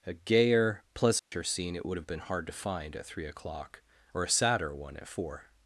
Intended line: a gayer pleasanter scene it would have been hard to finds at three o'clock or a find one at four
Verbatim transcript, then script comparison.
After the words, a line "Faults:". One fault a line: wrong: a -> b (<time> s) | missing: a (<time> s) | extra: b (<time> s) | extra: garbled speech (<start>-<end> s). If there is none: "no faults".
a gayer pleasanter scene it would have been hard to find at three o'clock or a sadder one at four
Faults:
wrong: finds -> find (2.5 s)
wrong: find -> sadder (4.3 s)